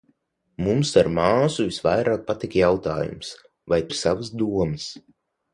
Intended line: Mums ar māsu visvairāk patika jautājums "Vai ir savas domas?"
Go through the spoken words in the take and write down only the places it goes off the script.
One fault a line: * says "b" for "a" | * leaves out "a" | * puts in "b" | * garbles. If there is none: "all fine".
all fine